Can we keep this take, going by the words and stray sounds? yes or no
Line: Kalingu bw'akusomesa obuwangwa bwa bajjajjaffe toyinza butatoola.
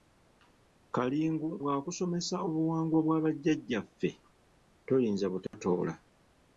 no